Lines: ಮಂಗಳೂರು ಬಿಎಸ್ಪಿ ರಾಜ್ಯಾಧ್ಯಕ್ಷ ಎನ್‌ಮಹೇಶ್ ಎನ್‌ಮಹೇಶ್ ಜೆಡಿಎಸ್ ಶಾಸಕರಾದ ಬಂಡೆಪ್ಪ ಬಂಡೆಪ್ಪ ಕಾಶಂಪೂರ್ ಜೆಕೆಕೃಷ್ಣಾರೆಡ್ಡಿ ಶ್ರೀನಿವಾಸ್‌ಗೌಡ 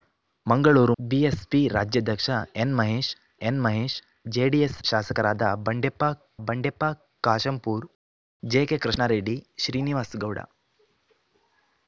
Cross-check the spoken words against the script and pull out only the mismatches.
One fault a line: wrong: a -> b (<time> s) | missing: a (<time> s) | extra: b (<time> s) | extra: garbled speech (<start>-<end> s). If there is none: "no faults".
no faults